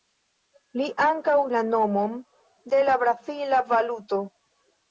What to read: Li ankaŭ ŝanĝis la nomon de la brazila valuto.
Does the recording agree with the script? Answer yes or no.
no